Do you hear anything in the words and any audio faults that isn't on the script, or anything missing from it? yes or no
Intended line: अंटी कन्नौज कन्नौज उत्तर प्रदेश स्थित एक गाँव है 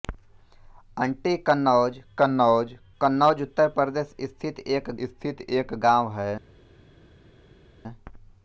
yes